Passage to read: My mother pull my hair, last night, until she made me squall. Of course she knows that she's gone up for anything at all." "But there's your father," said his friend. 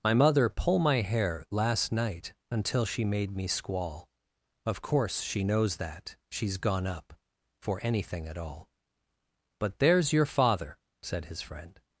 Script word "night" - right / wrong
right